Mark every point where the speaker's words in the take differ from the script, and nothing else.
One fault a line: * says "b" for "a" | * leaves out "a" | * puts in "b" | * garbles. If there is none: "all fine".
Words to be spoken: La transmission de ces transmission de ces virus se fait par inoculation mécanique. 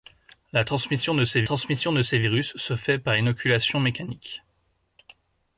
all fine